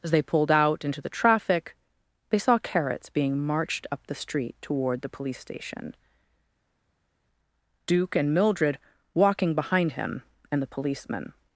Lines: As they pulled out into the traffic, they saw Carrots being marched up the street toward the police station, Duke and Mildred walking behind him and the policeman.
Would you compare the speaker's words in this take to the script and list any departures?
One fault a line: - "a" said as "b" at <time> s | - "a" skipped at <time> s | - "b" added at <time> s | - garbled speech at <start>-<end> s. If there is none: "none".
none